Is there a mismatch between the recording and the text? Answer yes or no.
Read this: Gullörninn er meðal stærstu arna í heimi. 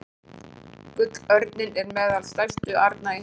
no